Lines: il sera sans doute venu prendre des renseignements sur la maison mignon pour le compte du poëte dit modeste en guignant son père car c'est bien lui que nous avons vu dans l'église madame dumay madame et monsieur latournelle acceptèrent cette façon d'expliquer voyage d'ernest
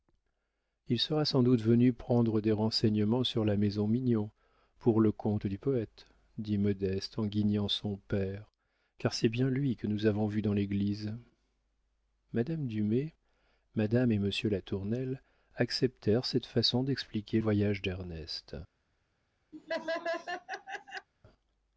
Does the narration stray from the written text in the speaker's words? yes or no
no